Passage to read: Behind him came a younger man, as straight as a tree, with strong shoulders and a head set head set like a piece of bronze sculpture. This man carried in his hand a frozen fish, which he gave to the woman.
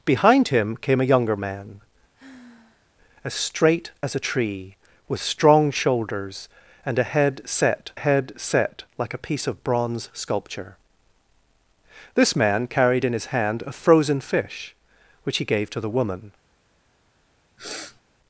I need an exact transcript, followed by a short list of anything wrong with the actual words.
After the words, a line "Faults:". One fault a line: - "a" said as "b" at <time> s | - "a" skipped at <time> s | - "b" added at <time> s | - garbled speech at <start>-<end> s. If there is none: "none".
Behind him came a younger man, as straight as a tree, with strong shoulders and a head set head set like a piece of bronze sculpture. This man carried in his hand a frozen fish, which he gave to the woman.
Faults:
none